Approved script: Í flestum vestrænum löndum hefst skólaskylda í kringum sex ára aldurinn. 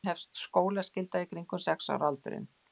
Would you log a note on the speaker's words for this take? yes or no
yes